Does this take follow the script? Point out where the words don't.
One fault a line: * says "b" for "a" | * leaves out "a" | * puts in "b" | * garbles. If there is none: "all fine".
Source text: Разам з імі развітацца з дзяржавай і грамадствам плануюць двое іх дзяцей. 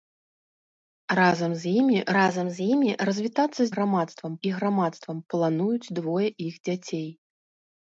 * puts in "разам з імі"
* says "грамадствам" for "дзяржавай"